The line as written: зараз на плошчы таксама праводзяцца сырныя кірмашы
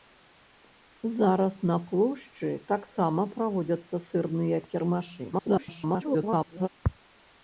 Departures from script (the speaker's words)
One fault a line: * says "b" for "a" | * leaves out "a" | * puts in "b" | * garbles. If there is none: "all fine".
* garbles